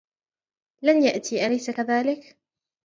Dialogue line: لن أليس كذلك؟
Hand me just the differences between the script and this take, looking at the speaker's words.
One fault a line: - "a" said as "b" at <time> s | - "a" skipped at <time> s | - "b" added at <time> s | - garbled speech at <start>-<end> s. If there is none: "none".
- "يأتي" added at 1.0 s